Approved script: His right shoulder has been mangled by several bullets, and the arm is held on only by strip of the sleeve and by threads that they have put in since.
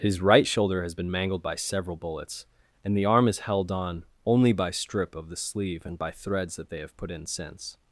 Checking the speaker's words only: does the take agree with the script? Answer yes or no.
yes